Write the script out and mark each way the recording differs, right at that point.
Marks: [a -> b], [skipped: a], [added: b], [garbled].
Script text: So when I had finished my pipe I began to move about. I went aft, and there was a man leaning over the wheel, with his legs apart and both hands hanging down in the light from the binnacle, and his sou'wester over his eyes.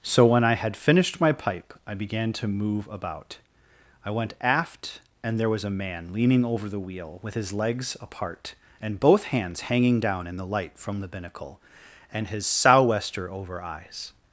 So when I had finished my pipe I began to move about. I went aft, and there was a man leaning over the wheel, with his legs apart and both hands hanging down in the light from the binnacle, and his sou'wester over [skipped: his] eyes.